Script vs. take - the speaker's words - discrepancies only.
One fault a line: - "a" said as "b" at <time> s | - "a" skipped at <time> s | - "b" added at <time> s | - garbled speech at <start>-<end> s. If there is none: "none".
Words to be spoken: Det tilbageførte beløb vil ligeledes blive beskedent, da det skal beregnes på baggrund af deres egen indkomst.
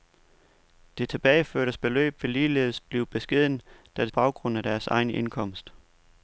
- "skal beregnes på" skipped at 4.1 s